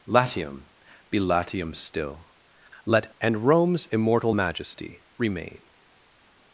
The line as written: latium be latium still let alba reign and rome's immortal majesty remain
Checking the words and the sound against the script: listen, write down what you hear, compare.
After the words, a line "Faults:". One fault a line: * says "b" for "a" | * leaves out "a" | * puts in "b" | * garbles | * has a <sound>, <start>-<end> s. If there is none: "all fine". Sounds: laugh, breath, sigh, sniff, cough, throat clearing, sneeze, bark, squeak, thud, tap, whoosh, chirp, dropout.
latium be latium still let and rome's immortal majesty remain
Faults:
* leaves out "alba reign"